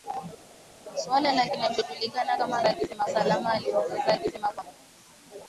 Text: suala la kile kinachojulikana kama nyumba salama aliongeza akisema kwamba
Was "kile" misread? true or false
true